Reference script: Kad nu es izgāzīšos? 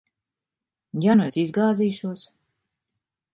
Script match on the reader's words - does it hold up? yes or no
no